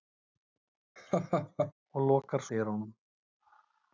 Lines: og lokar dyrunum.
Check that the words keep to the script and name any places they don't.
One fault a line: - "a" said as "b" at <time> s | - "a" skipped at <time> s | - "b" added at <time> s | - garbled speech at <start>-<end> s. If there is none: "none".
none